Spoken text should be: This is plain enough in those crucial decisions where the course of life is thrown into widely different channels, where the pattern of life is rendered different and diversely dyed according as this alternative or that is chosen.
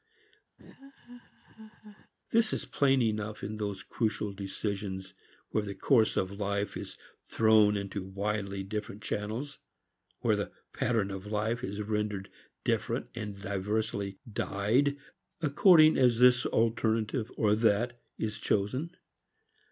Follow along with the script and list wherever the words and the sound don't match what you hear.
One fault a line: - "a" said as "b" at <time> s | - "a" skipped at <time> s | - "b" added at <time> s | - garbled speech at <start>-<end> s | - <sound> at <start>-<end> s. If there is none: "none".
- laugh at 0.6-2.1 s